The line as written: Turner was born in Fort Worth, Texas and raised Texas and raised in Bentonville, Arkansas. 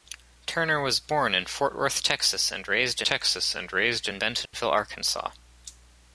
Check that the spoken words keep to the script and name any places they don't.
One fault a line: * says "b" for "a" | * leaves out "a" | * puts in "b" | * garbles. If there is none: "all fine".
all fine